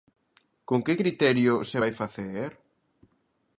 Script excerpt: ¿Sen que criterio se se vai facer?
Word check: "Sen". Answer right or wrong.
wrong